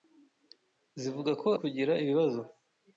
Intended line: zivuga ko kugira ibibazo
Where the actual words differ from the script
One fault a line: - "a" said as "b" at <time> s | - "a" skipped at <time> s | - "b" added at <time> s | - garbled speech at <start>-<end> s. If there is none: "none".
none